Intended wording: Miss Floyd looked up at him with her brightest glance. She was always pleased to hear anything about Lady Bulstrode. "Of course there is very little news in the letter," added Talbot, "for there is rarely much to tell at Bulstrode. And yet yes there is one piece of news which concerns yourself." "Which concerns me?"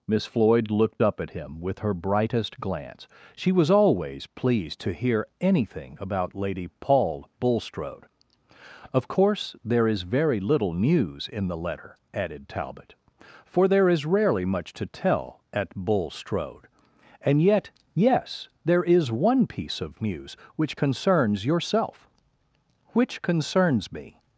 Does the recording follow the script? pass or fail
fail